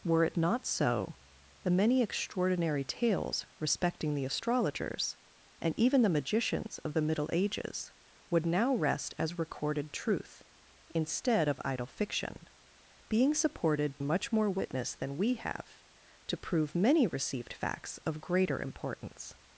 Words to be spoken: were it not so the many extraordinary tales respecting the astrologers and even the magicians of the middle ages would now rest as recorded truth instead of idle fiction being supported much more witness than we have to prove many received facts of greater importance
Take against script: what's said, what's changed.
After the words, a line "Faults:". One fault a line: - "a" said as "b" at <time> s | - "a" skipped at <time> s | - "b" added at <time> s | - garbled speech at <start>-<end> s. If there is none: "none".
were it not so the many extraordinary tales respecting the astrologers and even the magicians of the middle ages would now rest as recorded truth instead of idle fiction being supported much more witness than we have to prove many received facts of greater importance
Faults:
none